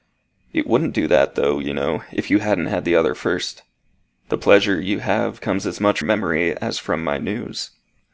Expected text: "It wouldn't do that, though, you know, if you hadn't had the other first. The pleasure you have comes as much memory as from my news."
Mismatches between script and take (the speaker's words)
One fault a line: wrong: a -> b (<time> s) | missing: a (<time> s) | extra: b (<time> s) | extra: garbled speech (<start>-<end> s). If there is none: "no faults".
no faults